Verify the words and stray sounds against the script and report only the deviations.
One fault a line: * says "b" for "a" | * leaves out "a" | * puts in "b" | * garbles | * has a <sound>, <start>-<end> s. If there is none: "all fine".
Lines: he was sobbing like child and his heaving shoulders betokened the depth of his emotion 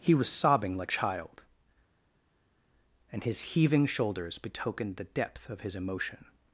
all fine